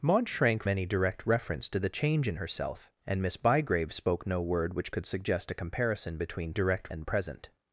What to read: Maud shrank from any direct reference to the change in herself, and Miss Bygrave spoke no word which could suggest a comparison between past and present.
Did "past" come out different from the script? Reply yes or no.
yes